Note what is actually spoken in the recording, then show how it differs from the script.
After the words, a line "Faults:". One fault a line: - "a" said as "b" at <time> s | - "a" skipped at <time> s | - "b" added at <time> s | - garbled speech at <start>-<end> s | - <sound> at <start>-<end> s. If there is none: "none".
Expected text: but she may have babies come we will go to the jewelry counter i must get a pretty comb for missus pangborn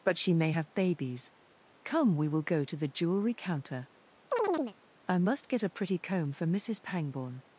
but she may have babies come we will go to the jewelry counter i must get a pretty comb for missus pangborn
Faults:
- chirp at 4.3-4.8 s